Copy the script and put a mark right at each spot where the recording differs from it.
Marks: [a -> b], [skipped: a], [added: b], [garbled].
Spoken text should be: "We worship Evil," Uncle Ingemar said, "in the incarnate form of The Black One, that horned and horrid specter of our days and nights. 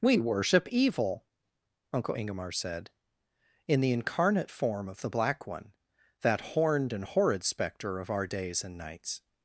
"We worship Evil," Uncle Ingemar said, "in the incarnate form of The Black One, that horned and horrid specter of our days and nights.